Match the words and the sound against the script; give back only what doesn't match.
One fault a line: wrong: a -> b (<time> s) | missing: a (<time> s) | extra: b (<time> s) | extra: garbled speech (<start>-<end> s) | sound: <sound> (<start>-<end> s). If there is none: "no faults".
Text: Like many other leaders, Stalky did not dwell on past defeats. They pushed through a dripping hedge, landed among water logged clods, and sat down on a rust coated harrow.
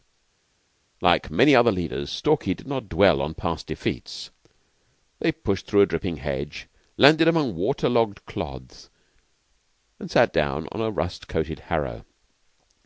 no faults